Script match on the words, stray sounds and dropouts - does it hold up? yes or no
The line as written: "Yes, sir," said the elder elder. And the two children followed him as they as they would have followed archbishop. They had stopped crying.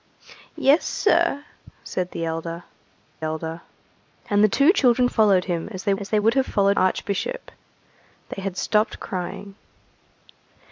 yes